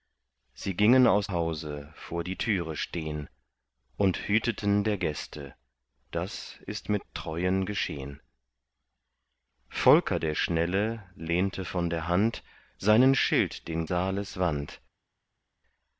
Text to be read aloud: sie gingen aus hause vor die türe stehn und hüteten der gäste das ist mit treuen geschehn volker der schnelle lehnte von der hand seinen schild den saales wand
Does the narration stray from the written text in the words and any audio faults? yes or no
no